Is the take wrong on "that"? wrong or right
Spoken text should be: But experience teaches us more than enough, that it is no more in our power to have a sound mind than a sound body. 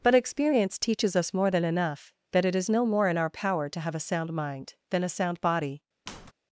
right